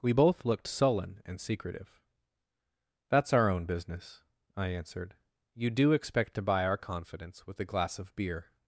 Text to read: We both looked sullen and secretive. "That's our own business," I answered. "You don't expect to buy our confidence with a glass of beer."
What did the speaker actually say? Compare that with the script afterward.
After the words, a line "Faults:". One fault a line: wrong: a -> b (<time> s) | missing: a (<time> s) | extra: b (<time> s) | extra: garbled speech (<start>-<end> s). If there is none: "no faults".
We both looked sullen and secretive. "That's our own business," I answered. "You do expect to buy our confidence with a glass of beer."
Faults:
wrong: don't -> do (5.7 s)